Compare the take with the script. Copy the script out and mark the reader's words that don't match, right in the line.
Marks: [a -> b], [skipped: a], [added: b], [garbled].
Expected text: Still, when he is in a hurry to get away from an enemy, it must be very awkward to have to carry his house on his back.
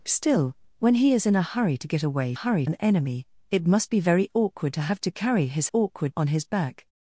Still, when he is in a hurry to get away [from -> hurry] an enemy, it must be very awkward to have to carry his [house -> awkward] on his back.